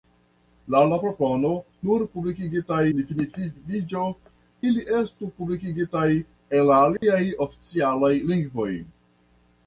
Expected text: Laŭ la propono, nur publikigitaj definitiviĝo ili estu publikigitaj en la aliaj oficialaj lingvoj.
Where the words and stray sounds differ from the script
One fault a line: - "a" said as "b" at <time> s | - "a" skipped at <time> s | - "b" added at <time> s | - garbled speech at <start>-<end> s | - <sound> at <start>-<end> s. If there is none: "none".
- dropout at 7.0-7.0 s